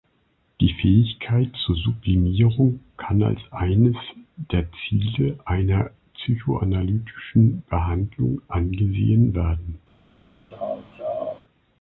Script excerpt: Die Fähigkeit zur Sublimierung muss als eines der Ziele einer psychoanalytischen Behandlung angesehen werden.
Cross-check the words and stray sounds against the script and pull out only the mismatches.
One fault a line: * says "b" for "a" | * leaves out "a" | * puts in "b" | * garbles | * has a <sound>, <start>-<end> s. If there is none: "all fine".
* says "kann" for "muss"
* has a laugh, 10.5-11.4 s